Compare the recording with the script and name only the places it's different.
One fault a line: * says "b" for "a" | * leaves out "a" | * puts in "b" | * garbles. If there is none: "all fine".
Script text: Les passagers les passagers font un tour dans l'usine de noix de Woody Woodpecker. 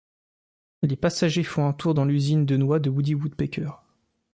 * leaves out "les passagers"